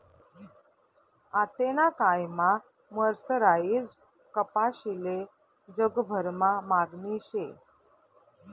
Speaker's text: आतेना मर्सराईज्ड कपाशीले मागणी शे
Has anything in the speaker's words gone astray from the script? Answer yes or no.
yes